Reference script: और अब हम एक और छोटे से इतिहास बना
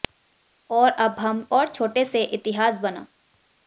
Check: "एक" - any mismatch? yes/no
yes